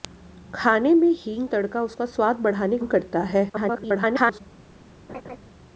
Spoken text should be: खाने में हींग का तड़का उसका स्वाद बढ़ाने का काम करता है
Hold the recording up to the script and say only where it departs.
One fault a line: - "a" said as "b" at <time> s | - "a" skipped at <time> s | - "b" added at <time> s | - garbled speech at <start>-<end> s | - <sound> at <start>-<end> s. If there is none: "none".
- "का" skipped at 1.5 s
- "का" skipped at 2.8 s
- garbled speech at 3.5-4.4 s
- laugh at 5.1-5.4 s